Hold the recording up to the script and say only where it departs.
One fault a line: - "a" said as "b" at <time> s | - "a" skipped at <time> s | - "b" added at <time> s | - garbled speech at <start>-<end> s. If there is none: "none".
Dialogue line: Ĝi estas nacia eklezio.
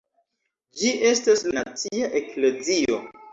none